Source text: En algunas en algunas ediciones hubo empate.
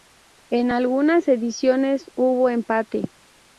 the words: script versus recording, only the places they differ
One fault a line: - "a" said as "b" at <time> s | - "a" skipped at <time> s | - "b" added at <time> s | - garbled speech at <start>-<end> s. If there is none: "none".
- "en algunas" skipped at 1.3 s